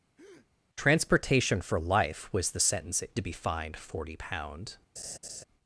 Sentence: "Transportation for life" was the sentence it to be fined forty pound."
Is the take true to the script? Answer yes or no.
yes